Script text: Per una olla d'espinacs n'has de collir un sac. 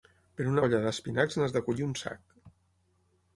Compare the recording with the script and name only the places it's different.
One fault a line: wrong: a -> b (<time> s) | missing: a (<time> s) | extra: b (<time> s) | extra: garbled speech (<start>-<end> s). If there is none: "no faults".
no faults